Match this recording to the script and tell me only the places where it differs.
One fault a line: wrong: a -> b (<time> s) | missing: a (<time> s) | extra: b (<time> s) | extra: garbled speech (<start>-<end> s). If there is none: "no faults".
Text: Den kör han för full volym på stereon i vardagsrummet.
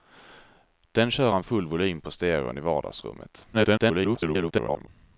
missing: för (1.4 s)
extra: garbled speech (3.5-4.9 s)